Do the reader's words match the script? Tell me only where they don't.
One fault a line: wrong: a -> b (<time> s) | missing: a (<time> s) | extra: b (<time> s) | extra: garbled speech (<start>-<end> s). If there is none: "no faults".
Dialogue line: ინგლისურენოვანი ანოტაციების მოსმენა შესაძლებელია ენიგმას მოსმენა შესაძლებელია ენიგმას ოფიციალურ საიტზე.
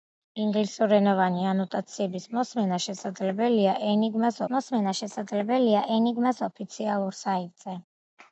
no faults